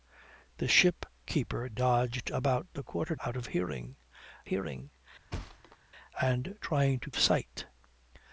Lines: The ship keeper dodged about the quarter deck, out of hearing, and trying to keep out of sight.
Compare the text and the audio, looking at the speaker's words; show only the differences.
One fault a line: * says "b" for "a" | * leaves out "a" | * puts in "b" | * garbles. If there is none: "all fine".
* leaves out "deck"
* puts in "hearing"
* leaves out "keep out of"